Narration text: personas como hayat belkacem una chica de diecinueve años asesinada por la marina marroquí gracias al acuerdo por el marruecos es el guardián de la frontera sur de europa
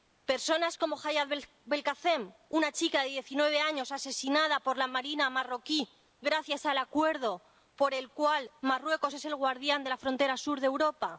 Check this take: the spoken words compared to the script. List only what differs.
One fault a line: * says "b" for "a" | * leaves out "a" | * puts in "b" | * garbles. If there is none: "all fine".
* puts in "cual"